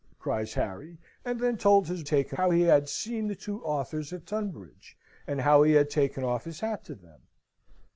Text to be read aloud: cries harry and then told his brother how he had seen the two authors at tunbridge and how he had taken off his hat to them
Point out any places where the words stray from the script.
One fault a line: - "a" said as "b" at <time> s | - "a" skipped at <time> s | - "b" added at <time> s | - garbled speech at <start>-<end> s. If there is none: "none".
- "brother" said as "taken" at 2.1 s